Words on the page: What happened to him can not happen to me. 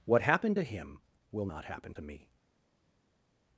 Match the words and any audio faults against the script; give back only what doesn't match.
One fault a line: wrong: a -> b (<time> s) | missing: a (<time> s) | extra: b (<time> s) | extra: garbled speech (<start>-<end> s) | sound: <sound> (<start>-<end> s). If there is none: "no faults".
wrong: can -> will (1.3 s)